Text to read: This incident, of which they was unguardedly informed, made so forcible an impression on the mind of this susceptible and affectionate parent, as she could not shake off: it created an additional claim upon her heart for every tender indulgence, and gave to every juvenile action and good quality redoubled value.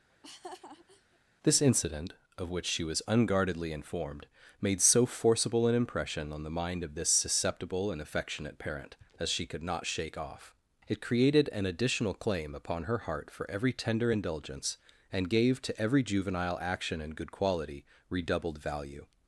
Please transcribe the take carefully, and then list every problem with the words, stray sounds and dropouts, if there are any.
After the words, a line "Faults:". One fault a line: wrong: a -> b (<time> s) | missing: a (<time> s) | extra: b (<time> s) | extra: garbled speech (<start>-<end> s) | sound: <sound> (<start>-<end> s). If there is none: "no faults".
This incident, of which she was unguardedly informed, made so forcible an impression on the mind of this susceptible and affectionate parent, as she could not shake off: it created an additional claim upon her heart for every tender indulgence, and gave to every juvenile action and good quality redoubled value.
Faults:
sound: laugh (0.1-1.2 s)
wrong: they -> she (2.7 s)